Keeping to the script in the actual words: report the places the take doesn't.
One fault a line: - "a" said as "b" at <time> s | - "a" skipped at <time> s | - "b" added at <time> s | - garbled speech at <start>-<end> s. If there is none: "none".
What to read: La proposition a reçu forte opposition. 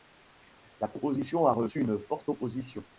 - "une" added at 1.8 s